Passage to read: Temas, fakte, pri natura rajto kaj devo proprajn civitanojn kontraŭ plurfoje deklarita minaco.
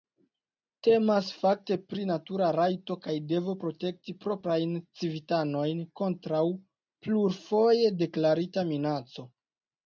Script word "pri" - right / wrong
right